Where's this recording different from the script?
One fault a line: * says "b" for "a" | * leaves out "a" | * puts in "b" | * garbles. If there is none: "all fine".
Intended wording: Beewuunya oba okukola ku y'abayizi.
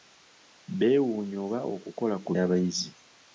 all fine